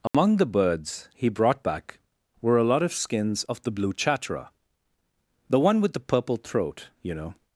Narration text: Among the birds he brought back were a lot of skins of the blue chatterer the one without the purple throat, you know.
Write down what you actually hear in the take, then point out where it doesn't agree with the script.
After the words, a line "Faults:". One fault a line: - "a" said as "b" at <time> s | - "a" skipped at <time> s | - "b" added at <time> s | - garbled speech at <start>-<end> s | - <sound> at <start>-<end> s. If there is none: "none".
Among the birds he brought back were a lot of skins of the blue chatterer the one with the purple throat, you know.
Faults:
- dropout at 0.1-0.1 s
- "without" said as "with" at 5.8 s